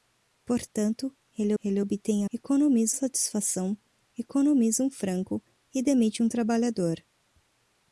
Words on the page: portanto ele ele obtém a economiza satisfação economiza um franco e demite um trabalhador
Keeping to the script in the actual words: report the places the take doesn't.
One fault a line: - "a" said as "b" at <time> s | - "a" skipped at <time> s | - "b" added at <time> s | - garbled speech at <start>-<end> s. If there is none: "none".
none